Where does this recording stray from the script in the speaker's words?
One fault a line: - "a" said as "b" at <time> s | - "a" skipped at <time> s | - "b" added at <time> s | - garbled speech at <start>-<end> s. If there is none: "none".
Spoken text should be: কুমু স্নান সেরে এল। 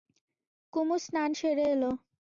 none